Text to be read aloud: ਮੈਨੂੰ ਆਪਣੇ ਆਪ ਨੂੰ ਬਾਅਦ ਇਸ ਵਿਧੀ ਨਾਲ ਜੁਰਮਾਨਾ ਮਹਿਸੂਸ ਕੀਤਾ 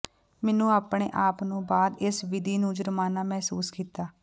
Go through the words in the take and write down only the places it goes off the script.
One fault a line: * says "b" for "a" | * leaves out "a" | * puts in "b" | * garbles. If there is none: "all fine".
* says "ਨੂੰ" for "ਨਾਲ"